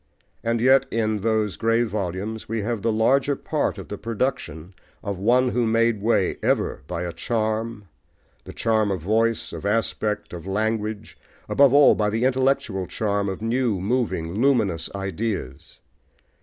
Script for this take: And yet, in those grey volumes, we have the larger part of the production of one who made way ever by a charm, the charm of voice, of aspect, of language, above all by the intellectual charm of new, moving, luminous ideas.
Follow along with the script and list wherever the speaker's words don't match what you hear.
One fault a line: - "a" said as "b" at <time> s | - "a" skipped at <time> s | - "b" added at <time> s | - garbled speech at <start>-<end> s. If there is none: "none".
none